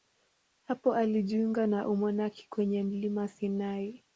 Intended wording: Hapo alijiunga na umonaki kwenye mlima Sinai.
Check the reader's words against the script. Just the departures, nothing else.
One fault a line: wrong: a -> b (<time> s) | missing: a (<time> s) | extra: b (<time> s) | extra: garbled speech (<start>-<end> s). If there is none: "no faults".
no faults